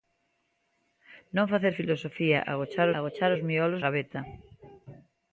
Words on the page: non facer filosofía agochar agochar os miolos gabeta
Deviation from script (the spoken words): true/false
false